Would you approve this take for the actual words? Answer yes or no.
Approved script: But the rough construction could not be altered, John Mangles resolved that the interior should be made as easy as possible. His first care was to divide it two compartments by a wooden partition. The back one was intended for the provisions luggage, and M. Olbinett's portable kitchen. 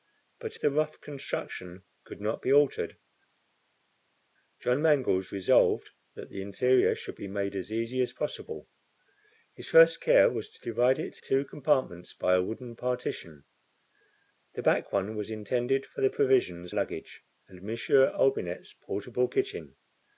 yes